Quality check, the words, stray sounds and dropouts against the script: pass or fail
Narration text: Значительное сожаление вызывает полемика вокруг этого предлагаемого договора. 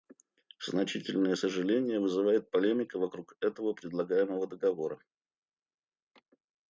pass